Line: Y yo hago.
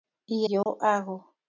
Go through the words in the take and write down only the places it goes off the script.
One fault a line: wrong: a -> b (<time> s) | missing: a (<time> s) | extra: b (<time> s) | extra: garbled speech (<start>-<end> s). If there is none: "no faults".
no faults